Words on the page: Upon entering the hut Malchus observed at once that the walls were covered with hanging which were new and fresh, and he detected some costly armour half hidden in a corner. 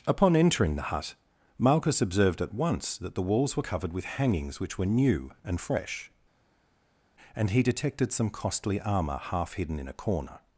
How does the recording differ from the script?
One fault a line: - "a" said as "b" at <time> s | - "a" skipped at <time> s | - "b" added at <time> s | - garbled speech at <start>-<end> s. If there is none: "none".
- "hanging" said as "hangings" at 4.1 s